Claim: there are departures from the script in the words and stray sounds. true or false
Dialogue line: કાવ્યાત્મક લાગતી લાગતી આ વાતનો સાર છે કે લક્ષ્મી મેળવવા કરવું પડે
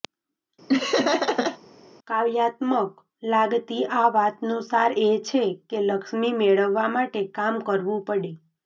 true